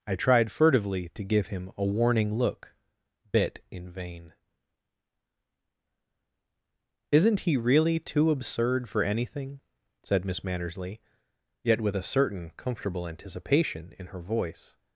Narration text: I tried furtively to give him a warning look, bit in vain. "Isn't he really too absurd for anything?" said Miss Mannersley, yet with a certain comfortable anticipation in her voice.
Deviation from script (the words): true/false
false